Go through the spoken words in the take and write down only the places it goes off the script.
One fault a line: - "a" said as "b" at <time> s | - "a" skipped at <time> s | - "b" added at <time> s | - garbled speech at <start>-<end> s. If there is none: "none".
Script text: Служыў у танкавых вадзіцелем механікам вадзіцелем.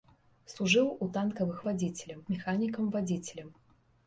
none